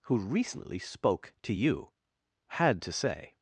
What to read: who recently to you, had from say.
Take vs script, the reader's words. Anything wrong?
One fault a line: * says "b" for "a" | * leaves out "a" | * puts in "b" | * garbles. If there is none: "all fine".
* puts in "spoke"
* says "to" for "from"